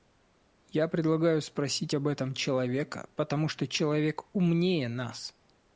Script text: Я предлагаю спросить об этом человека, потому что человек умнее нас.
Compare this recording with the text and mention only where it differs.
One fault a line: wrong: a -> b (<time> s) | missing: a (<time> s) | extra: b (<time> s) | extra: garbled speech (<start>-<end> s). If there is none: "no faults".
no faults